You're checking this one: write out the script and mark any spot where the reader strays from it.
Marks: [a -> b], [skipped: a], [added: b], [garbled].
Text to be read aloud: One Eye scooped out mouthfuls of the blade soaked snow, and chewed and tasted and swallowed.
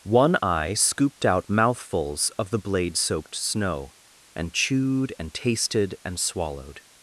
One Eye scooped out mouthfuls of the blade soaked snow, and chewed and tasted and swallowed.